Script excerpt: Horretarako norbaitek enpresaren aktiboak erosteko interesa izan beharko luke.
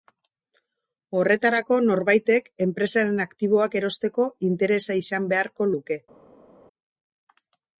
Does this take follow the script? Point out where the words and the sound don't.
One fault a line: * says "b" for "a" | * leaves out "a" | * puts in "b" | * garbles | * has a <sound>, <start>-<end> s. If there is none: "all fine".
all fine